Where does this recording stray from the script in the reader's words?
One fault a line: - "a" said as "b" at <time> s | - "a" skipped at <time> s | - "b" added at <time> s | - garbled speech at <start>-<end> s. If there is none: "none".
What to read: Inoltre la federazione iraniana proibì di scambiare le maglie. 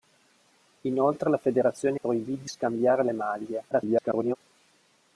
- "iraniana" skipped at 2.0 s
- garbled speech at 3.7-4.4 s